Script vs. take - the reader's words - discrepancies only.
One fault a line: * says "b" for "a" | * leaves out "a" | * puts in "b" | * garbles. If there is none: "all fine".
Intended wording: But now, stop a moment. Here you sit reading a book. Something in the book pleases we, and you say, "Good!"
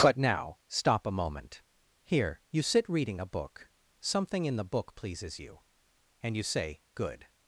* says "you" for "we"